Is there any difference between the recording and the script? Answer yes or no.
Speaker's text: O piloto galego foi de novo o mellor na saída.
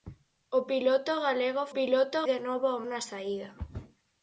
yes